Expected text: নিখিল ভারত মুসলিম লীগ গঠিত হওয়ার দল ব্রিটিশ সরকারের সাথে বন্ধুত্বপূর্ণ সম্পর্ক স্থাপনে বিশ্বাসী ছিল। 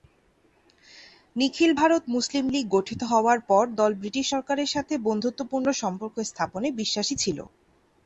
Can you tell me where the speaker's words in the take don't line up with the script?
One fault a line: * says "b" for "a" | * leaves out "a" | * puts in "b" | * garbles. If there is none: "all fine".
* puts in "পর"